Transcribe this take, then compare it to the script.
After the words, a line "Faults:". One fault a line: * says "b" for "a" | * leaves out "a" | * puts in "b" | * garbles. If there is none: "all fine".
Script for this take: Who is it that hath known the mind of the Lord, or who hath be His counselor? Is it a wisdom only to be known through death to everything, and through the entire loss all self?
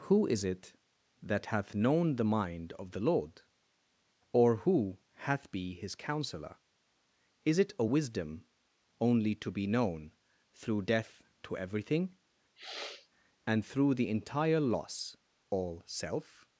Who is it that hath known the mind of the Lord, or who hath be His counselor? Is it a wisdom only to be known through death to everything, and through the entire loss all self?
Faults:
all fine